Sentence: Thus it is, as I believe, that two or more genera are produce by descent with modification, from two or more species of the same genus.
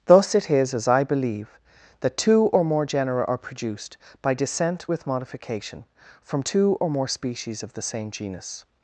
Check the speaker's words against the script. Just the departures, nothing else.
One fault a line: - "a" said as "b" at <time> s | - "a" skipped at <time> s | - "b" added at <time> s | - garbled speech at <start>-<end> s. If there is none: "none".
- "produce" said as "produced" at 3.4 s